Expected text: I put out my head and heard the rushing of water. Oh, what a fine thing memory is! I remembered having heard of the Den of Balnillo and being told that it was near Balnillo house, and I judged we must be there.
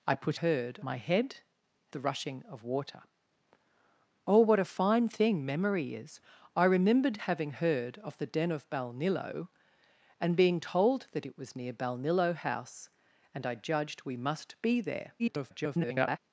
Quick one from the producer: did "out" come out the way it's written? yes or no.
no